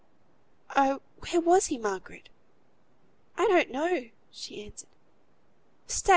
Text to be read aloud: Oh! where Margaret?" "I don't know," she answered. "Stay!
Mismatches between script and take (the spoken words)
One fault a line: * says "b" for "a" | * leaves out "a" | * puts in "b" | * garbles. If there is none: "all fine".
* puts in "was he"